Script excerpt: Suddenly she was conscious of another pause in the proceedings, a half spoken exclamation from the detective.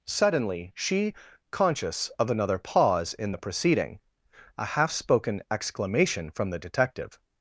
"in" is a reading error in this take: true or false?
false